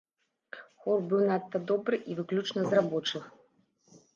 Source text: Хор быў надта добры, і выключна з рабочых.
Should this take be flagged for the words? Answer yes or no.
no